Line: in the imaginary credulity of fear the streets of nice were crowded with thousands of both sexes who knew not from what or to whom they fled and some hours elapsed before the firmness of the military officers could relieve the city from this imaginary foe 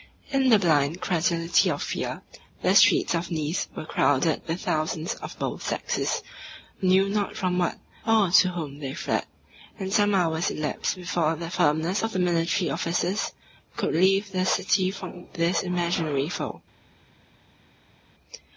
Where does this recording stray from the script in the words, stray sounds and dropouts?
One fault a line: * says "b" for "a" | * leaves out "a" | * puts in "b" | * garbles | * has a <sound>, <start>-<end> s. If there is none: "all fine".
* says "blind" for "imaginary"